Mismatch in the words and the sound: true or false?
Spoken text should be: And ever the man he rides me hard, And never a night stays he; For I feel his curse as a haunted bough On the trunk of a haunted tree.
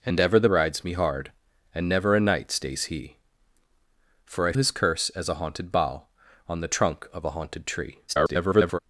true